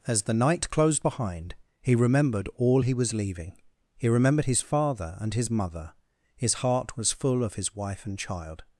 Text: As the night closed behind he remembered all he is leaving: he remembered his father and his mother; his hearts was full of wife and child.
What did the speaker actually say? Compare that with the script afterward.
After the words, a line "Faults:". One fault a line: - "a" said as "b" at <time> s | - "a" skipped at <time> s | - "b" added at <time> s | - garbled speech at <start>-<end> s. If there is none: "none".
As the night closed behind he remembered all he was leaving: he remembered his father and his mother; his heart was full of his wife and child.
Faults:
- "is" said as "was" at 2.9 s
- "hearts" said as "heart" at 6.5 s
- "his" added at 7.5 s